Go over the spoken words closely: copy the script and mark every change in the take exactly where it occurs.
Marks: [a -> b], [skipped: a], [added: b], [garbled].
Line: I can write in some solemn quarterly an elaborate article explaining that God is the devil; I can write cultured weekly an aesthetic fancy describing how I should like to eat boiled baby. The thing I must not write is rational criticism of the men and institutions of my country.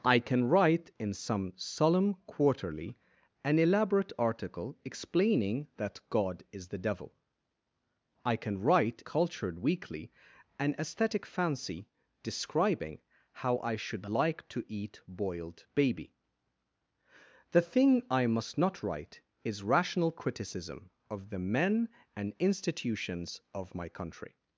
I can write in some solemn quarterly an elaborate article explaining that God is the devil; I can write cultured weekly an aesthetic fancy describing how I should like to eat boiled baby. The thing I must not write is rational criticism of the men and institutions of my country.